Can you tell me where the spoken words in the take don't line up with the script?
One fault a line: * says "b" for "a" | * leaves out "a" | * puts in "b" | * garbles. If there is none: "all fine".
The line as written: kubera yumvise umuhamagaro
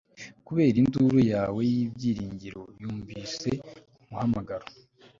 * puts in "induru yawe y'ibyiringiro"